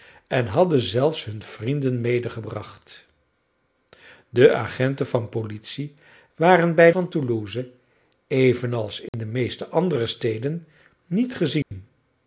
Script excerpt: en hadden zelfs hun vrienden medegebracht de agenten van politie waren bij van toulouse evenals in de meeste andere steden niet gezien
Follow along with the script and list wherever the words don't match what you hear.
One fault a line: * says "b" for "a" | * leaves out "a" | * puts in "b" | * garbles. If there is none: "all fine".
all fine